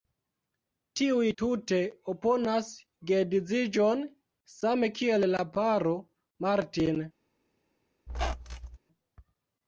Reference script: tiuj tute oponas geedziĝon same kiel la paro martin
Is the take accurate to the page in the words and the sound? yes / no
no